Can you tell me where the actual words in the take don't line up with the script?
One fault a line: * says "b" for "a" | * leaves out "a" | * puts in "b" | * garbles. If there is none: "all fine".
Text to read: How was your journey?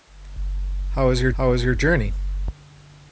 * puts in "how was your"